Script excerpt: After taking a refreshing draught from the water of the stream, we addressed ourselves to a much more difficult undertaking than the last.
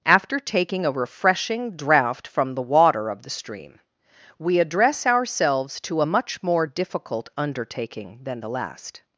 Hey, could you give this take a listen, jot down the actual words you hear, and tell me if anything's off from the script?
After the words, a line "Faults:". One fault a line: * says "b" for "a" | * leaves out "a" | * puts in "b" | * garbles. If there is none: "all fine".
After taking a refreshing draught from the water of the stream, we address ourselves to a much more difficult undertaking than the last.
Faults:
* says "address" for "addressed"